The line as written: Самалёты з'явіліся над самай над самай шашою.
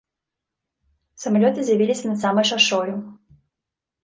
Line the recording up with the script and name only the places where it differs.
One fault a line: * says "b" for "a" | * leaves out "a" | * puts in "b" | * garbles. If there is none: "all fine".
* leaves out "над самай"